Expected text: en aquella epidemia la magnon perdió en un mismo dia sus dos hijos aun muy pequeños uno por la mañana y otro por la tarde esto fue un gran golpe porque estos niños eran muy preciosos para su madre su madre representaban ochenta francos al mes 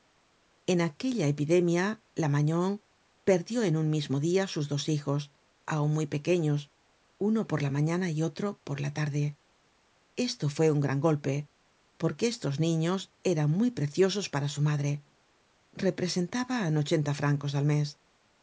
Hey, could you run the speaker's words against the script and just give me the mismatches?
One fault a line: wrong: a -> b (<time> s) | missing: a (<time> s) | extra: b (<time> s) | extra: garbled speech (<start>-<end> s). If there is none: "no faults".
missing: su madre (15.0 s)